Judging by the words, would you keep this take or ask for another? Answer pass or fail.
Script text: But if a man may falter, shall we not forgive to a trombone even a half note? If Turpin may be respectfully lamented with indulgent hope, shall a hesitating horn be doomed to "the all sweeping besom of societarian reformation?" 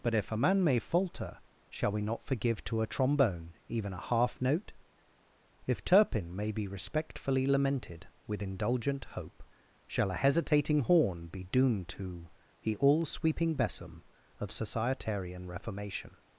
pass